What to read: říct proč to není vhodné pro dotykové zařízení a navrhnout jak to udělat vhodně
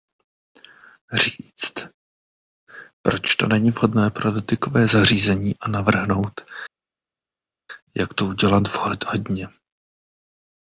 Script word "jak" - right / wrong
right